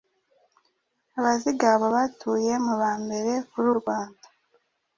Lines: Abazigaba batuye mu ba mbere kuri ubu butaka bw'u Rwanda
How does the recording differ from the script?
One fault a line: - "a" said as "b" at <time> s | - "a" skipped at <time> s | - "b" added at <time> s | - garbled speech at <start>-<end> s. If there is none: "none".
- "ubu butaka bw'u" skipped at 3.7 s